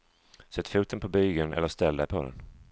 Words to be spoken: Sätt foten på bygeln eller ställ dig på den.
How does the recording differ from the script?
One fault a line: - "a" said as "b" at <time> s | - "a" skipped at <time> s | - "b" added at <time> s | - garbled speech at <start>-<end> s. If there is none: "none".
none